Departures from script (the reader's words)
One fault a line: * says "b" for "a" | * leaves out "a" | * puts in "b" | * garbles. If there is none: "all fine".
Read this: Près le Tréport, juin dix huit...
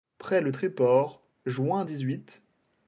all fine